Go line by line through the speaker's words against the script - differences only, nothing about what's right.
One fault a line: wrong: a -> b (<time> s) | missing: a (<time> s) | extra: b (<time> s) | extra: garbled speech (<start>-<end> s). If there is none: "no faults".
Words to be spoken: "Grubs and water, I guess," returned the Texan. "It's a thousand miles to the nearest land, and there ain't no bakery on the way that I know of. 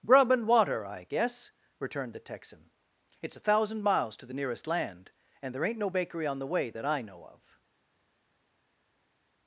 wrong: Grubs -> Grub (0.0 s)